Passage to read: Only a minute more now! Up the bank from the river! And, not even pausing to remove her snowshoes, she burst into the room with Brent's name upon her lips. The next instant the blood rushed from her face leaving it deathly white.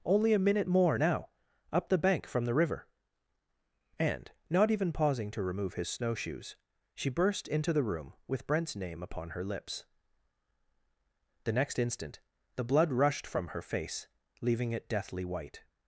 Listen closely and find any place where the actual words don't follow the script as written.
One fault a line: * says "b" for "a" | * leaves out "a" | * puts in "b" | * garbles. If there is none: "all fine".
* says "his" for "her"